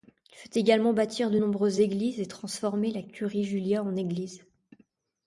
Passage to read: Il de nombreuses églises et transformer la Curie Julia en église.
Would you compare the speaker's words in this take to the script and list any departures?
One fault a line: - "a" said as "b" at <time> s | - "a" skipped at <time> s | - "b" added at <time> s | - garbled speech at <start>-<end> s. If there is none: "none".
- "fait également bâtir" added at 0.3 s